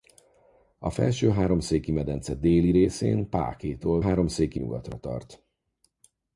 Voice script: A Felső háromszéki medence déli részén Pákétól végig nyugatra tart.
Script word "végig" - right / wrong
wrong